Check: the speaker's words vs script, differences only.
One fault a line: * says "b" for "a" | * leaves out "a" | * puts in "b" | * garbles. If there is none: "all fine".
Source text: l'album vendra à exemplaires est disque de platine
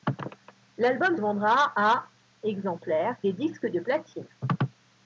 all fine